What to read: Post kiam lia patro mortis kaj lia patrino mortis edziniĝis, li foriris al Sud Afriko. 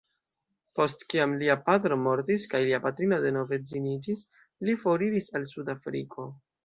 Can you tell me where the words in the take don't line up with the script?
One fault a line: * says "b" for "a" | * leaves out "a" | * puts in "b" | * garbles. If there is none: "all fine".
* says "denove" for "mortis"